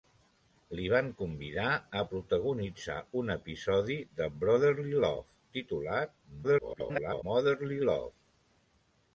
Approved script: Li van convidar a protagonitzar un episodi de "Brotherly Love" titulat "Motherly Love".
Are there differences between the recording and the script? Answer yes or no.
yes